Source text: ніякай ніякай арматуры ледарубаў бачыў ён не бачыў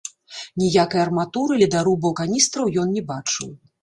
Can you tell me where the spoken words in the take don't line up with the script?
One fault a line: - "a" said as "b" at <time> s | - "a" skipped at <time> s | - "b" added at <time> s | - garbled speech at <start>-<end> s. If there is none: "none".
- "ніякай" skipped at 1.0 s
- "бачыў" said as "каністраў" at 2.2 s